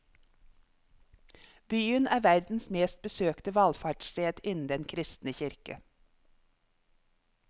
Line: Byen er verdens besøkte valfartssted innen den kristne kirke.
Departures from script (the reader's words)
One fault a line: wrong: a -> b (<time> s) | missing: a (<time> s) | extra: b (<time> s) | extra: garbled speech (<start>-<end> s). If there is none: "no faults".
extra: mest (2.7 s)